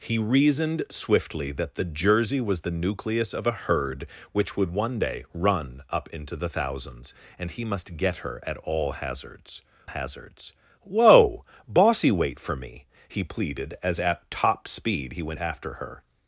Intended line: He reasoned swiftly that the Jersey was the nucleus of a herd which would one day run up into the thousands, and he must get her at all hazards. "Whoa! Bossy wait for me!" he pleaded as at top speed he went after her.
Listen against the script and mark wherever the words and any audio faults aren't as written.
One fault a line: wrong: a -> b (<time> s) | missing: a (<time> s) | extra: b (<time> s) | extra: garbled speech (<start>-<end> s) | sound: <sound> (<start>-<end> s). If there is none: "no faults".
extra: hazards (9.9 s)